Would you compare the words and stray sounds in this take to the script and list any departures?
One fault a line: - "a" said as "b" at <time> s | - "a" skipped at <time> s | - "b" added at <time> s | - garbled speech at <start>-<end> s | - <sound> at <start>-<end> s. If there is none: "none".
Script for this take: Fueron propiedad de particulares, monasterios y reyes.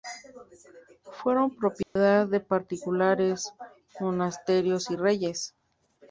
- dropout at 1.8-2.0 s